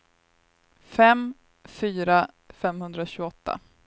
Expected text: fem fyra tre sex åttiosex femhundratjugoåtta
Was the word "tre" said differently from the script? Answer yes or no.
yes